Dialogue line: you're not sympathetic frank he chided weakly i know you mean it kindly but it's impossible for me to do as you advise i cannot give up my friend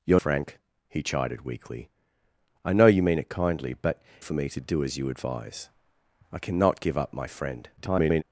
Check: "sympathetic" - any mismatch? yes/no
yes